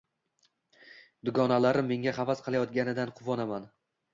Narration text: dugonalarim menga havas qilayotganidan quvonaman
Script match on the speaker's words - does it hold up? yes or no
yes